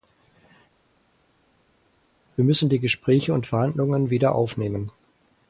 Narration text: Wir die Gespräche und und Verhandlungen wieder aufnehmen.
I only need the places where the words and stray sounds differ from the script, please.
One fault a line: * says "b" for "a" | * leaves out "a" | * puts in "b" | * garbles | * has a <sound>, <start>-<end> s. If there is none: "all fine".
* puts in "müssen"
* leaves out "und"